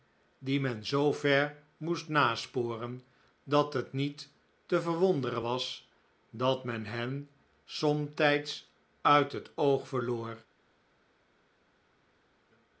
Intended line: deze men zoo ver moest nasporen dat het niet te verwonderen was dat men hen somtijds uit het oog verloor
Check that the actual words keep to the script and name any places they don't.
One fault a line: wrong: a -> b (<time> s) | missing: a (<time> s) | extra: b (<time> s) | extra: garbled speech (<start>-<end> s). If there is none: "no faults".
wrong: deze -> die (0.5 s)